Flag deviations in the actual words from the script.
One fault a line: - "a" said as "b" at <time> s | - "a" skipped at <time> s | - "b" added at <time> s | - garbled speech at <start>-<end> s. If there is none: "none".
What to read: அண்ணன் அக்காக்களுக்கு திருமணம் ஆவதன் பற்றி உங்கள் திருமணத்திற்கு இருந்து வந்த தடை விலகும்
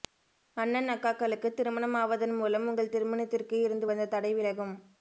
- "பற்றி" said as "மூலம்" at 2.4 s